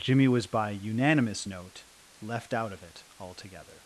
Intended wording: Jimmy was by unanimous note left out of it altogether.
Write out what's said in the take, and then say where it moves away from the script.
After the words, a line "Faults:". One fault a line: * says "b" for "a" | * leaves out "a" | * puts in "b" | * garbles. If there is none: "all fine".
Jimmy was by unanimous note left out of it altogether.
Faults:
all fine